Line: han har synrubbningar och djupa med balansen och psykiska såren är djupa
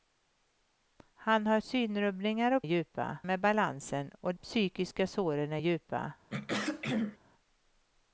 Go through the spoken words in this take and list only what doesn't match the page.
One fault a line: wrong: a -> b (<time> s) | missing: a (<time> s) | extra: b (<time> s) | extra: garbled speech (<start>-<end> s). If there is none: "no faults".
no faults